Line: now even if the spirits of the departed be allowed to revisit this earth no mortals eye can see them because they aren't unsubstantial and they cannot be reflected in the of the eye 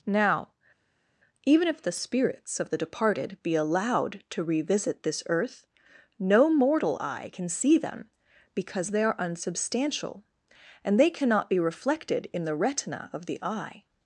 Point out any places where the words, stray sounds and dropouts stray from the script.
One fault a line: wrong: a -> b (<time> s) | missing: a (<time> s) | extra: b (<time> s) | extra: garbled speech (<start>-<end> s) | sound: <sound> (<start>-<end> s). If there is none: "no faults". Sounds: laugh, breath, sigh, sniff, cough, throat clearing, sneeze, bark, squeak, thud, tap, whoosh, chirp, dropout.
wrong: mortals -> mortal (6.5 s)
wrong: aren't -> are (9.0 s)
extra: retina (12.5 s)